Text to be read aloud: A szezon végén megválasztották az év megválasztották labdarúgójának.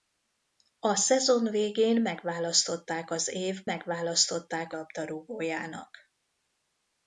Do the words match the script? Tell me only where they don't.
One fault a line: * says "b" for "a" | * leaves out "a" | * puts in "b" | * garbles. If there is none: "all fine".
all fine